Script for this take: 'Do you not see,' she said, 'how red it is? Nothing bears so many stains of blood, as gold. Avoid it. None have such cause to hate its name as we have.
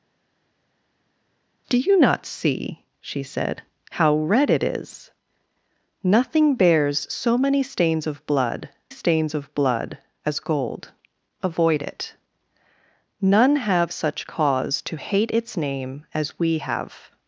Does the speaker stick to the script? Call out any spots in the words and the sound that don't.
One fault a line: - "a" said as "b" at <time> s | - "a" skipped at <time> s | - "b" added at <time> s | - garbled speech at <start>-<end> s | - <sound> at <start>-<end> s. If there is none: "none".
- "stains of blood" added at 8.9 s